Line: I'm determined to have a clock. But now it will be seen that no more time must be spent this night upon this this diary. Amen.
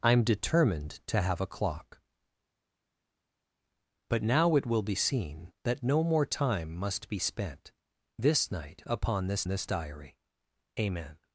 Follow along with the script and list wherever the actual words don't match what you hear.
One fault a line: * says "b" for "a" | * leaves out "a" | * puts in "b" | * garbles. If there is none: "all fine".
all fine